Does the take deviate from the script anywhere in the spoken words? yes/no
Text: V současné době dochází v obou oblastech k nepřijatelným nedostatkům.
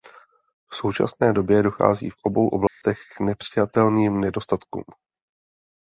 no